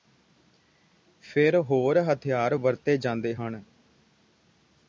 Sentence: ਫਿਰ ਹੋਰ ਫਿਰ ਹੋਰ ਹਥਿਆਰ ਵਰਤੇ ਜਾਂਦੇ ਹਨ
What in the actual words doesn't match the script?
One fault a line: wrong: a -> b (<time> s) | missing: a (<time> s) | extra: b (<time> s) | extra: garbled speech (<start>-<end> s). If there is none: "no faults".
missing: ਫਿਰ ਹੋਰ (2.0 s)